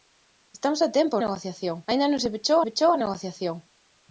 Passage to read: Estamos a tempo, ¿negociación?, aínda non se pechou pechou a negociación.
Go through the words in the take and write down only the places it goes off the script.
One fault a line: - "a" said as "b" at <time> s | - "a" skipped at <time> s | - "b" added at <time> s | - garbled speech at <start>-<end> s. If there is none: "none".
none